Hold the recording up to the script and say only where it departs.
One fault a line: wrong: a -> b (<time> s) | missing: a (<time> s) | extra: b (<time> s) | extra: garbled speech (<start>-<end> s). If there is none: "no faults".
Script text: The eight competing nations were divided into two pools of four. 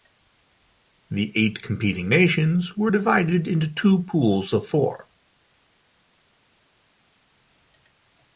no faults